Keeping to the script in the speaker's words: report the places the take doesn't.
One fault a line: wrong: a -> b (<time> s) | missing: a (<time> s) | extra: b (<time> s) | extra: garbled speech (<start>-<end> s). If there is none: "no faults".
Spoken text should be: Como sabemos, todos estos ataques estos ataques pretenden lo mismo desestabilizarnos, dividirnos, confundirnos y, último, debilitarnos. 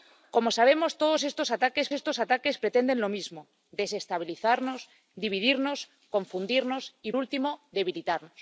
no faults